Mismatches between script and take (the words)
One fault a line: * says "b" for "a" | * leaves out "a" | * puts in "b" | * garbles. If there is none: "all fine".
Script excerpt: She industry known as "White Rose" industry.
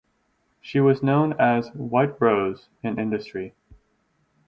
* says "was" for "industry"
* puts in "in"